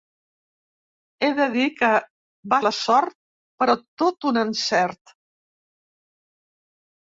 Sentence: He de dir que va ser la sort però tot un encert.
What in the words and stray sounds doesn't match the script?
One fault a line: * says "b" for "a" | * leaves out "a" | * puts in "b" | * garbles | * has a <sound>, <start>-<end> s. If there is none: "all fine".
* leaves out "ser"